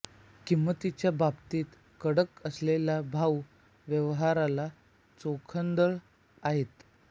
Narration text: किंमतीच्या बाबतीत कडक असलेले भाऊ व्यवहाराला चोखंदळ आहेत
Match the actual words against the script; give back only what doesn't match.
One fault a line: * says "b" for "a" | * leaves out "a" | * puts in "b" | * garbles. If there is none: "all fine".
all fine